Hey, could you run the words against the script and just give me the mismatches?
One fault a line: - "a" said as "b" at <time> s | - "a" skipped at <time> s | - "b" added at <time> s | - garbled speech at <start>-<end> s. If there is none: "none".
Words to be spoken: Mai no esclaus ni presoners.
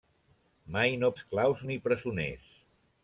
none